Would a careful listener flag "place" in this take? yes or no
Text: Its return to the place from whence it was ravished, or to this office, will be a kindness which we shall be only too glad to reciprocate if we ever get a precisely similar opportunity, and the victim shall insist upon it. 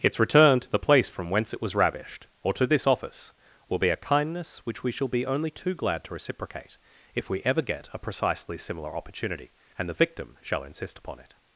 no